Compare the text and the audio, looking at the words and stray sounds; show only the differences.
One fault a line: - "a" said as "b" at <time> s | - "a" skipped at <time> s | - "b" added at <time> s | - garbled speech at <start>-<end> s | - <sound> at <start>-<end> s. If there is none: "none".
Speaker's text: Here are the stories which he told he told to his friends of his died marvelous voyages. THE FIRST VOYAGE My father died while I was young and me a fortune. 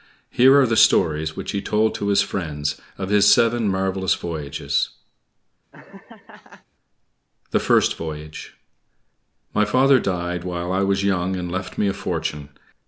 - "he told" skipped at 1.9 s
- "died" said as "seven" at 3.3 s
- laugh at 5.7-6.7 s
- "left" added at 11.5 s